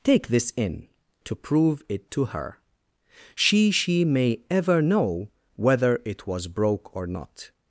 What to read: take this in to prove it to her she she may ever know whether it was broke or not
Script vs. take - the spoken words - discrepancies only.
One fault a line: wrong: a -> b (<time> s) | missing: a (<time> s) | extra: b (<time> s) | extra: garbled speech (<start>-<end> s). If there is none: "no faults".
no faults